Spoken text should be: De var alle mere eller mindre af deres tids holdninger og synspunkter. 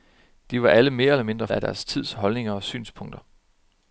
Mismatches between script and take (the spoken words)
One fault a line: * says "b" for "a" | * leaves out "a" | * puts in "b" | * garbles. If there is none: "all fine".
all fine